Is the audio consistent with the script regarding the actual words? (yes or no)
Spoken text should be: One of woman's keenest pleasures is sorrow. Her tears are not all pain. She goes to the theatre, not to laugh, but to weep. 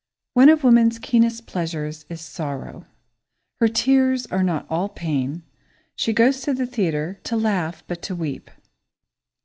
no